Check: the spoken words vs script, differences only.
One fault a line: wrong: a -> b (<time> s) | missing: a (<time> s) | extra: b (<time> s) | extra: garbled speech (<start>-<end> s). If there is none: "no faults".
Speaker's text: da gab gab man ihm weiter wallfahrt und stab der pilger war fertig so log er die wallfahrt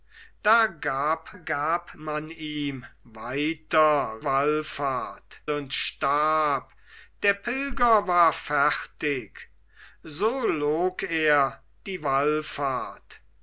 no faults